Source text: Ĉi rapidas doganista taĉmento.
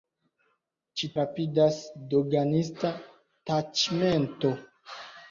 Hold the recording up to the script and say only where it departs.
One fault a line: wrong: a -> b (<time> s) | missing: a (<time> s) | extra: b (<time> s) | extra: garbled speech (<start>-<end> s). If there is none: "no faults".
no faults